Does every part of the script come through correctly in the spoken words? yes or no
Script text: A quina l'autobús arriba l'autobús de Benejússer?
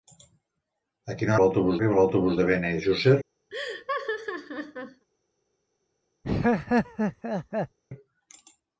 yes